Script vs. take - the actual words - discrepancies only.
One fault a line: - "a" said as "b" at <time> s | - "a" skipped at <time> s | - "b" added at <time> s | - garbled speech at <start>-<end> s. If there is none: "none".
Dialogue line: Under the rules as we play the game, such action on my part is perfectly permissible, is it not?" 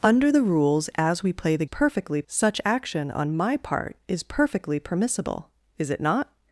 - "game" said as "perfectly" at 1.7 s